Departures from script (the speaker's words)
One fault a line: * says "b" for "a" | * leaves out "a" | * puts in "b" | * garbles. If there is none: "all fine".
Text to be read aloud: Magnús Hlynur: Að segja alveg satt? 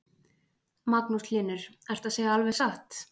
* puts in "Ertu"